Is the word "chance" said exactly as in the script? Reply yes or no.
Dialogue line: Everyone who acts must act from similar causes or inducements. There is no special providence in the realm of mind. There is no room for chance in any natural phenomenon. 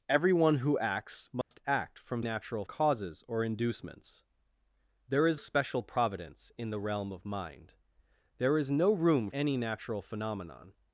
no